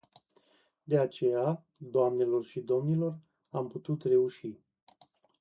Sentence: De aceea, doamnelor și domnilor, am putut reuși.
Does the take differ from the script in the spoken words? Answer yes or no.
no